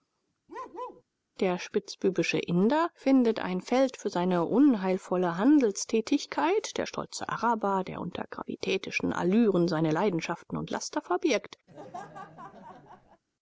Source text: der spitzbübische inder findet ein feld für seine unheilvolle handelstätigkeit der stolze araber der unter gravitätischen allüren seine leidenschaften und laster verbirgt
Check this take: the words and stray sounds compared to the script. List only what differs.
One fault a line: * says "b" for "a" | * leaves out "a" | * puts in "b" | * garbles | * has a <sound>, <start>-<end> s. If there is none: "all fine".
* has a bark, 0.5-1.0 s
* has a laugh, 11.7-13.2 s